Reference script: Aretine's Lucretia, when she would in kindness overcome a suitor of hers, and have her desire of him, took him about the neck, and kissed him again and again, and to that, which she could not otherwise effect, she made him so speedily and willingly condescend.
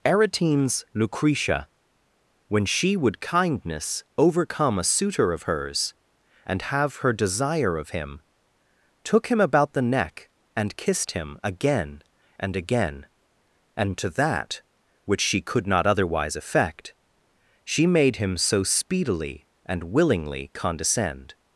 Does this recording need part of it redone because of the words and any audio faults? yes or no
yes